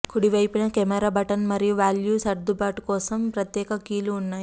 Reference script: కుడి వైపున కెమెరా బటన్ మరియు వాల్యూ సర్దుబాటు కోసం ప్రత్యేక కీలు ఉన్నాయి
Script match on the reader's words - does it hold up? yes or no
yes